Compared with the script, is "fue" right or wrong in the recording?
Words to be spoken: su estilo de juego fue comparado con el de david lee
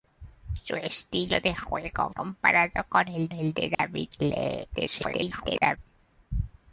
wrong